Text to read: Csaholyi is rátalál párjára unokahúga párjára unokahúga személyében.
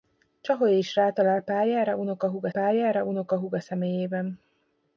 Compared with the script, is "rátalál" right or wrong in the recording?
right